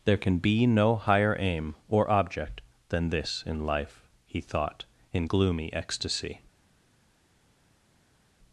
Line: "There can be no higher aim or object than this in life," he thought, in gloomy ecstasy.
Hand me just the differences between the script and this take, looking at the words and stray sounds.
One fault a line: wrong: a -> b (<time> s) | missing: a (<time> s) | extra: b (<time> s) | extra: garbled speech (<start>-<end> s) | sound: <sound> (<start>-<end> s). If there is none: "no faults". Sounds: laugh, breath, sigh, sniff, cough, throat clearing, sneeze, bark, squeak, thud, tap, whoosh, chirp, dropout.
no faults